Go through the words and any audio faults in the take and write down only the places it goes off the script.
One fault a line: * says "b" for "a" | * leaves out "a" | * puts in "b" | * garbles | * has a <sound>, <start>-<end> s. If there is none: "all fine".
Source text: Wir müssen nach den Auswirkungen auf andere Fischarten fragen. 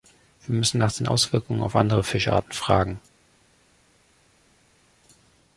all fine